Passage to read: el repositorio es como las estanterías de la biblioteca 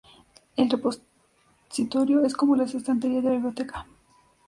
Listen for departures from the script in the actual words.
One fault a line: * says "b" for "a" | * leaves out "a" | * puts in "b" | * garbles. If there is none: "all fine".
all fine